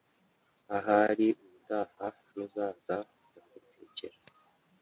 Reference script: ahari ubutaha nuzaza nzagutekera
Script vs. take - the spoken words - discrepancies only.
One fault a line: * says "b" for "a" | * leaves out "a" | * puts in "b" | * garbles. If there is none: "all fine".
all fine